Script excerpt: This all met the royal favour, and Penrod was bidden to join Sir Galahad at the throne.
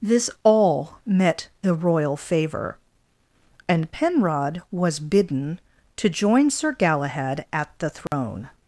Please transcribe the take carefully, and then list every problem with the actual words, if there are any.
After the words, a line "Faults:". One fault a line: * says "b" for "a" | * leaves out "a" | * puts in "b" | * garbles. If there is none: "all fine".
This all met the royal favour, and Penrod was bidden to join Sir Galahad at the throne.
Faults:
all fine